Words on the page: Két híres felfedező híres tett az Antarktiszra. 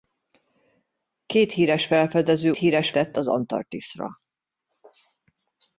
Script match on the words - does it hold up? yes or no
yes